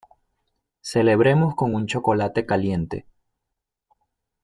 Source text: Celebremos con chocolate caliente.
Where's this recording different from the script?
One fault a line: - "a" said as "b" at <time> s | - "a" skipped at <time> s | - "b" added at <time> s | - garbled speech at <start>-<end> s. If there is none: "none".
- "un" added at 1.7 s